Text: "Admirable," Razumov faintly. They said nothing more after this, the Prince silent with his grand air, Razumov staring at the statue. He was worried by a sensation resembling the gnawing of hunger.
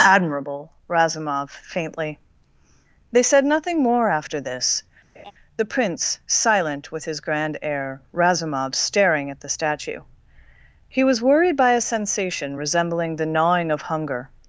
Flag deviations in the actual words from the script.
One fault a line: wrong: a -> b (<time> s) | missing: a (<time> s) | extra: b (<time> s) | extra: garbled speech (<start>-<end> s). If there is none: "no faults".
no faults